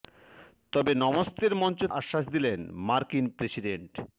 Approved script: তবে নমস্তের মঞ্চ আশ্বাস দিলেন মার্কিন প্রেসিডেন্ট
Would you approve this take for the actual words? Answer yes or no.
yes